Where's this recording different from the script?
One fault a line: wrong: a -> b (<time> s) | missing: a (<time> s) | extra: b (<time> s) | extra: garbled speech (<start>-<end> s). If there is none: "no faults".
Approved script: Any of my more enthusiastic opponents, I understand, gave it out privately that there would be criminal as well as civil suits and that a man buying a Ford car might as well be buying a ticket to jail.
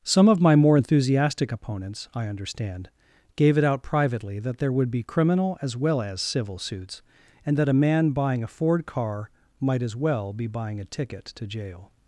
wrong: Any -> Some (0.0 s)